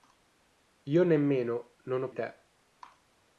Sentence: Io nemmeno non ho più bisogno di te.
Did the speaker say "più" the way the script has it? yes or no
no